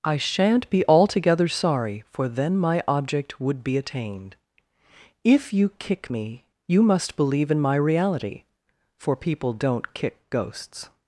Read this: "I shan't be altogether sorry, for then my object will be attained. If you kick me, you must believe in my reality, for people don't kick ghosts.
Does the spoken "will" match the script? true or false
false